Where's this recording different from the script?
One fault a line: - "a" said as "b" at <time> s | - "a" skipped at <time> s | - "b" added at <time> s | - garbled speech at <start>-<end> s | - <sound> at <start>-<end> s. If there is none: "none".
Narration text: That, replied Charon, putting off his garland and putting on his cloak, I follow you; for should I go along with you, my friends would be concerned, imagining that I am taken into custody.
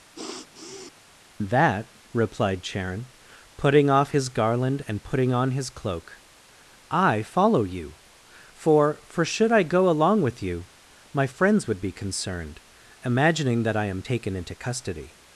- sniff at 0.1-0.9 s
- "for" added at 9.0 s